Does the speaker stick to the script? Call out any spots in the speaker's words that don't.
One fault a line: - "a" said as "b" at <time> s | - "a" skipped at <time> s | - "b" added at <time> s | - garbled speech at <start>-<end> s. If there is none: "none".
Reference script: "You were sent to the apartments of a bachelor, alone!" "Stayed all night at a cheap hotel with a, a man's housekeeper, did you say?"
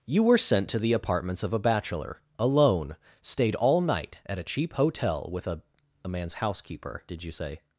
none